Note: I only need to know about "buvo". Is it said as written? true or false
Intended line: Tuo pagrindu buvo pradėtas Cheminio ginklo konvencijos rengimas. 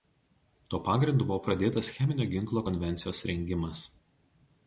true